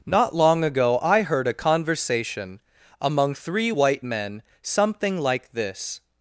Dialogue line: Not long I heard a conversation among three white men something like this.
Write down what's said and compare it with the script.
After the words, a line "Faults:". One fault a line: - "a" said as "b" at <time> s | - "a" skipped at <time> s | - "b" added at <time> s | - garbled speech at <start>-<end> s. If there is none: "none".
Not long ago I heard a conversation among three white men something like this.
Faults:
- "ago" added at 0.6 s